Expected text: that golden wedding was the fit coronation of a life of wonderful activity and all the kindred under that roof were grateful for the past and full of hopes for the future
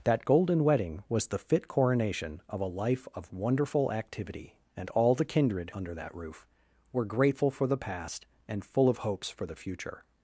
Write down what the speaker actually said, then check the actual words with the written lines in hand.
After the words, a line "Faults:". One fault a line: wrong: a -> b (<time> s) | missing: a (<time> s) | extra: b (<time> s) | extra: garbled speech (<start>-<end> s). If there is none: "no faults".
that golden wedding was the fit coronation of a life of wonderful activity and all the kindred under that roof were grateful for the past and full of hopes for the future
Faults:
no faults